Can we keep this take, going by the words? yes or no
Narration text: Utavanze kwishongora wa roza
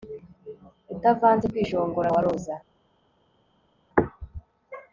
yes